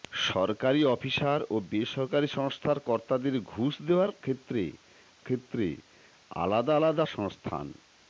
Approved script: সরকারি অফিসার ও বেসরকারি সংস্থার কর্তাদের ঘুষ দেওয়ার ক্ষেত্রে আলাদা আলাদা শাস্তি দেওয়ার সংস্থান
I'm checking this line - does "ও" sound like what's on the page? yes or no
yes